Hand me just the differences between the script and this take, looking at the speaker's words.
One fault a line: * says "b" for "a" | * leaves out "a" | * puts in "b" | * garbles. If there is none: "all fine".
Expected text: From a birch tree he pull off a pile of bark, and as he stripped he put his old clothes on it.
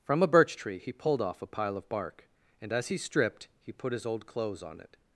* says "pulled" for "pull"